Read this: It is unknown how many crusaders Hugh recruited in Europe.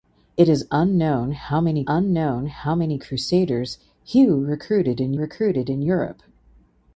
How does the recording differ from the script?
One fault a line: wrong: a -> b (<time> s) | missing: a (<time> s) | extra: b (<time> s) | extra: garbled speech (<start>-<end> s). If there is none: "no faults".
extra: unknown how many (1.9 s)
extra: recruited in (5.1 s)